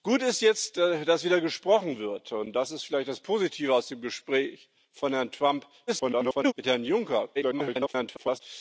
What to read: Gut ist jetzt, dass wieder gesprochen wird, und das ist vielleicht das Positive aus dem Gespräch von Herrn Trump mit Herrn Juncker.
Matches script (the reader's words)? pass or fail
fail